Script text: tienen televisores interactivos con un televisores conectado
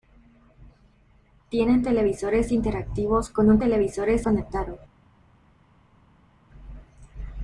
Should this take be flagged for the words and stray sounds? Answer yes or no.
no